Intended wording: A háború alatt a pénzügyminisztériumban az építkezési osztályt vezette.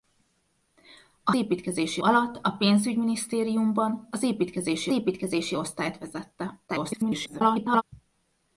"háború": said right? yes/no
no